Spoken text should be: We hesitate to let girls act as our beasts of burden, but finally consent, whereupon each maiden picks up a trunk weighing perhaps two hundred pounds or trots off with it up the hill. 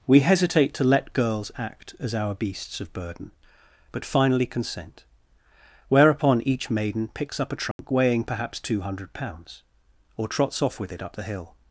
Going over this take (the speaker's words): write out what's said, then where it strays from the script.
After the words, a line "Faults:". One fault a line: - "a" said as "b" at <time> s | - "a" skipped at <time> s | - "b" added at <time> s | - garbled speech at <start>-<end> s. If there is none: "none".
We hesitate to let girls act as our beasts of burden, but finally consent, whereupon each maiden picks up a trunk weighing perhaps two hundred pounds or trots off with it up the hill.
Faults:
none